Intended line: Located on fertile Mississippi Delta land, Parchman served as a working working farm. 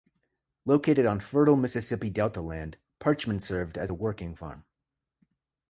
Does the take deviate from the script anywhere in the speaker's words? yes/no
yes